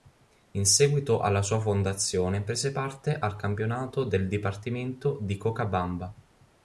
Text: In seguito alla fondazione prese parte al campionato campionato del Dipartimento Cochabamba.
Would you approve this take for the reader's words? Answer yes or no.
no